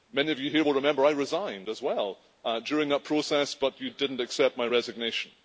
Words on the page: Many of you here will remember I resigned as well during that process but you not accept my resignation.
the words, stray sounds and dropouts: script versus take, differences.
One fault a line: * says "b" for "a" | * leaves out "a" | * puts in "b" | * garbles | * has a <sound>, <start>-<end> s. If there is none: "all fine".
* puts in "did"